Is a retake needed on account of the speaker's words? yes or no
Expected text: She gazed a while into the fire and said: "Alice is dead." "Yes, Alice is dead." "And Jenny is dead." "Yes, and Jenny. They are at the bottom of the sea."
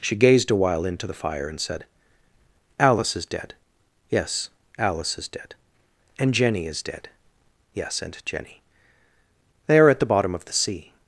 no